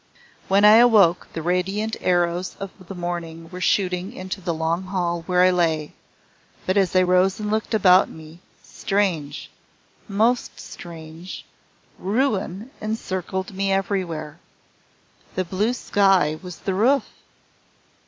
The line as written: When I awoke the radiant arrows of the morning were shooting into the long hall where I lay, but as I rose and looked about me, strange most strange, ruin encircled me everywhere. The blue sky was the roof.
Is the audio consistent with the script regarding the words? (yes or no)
yes